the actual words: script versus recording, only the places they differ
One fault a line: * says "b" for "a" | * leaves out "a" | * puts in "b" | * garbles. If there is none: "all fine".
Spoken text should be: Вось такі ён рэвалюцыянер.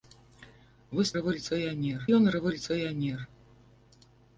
* says "рэвалюцыянер" for "такі"